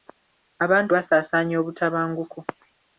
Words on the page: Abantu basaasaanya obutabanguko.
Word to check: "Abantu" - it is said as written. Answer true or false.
true